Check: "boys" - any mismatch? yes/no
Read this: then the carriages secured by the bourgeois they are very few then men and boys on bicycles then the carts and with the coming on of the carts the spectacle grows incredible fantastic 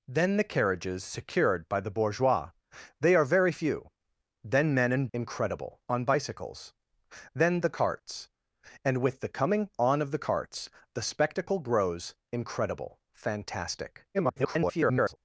yes